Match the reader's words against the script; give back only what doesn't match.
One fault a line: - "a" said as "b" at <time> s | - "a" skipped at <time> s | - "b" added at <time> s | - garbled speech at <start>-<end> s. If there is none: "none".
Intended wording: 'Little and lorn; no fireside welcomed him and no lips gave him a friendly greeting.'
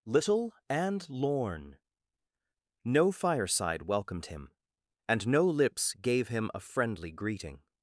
none